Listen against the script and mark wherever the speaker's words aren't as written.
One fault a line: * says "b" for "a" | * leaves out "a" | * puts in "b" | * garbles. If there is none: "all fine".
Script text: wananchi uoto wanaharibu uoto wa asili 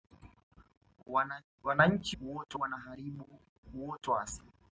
all fine